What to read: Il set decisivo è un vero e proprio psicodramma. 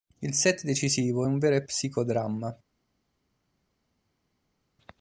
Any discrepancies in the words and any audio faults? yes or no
yes